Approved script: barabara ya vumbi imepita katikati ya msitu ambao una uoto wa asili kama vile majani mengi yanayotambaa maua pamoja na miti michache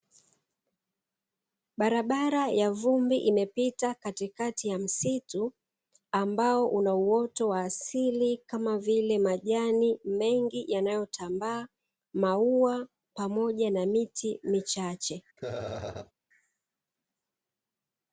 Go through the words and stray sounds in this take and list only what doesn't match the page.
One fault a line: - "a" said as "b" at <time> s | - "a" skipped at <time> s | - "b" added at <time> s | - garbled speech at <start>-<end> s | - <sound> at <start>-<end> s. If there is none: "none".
- laugh at 15.4-16.1 s